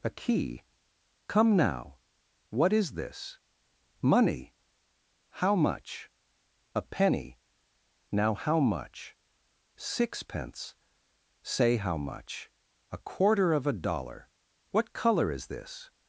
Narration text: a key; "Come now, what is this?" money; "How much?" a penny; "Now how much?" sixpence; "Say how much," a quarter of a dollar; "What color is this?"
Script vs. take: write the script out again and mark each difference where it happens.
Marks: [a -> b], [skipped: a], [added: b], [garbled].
a key; "Come now, what is this?" money; "How much?" a penny; "Now how much?" sixpence; "Say how much," a quarter of a dollar; "What color is this?"